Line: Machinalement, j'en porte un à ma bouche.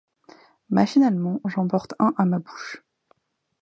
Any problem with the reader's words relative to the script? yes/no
no